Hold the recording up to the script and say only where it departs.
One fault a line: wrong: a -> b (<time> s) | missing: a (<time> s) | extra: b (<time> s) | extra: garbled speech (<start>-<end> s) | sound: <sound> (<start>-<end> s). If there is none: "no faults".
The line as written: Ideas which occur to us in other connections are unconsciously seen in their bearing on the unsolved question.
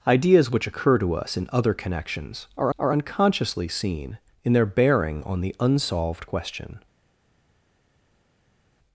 extra: are (2.8 s)